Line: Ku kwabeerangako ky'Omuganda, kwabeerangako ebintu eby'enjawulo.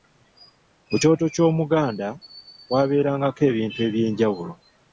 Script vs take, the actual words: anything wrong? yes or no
yes